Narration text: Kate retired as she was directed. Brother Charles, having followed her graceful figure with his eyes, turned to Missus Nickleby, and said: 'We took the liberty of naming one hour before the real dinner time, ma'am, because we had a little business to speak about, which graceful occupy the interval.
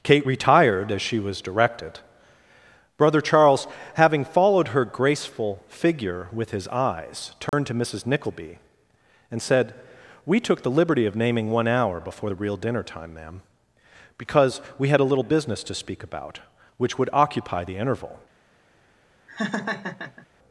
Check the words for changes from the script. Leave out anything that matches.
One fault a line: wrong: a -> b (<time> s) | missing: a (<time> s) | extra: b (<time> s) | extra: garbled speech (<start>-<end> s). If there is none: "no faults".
wrong: graceful -> would (17.0 s)